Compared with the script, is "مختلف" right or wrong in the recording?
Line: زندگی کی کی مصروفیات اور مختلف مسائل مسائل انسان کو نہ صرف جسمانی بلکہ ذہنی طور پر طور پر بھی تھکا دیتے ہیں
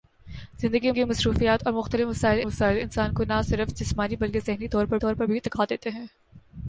right